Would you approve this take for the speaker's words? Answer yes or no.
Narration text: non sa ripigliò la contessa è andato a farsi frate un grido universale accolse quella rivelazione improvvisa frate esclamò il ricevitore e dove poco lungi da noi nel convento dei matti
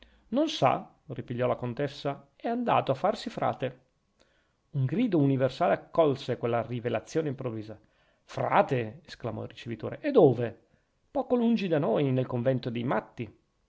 yes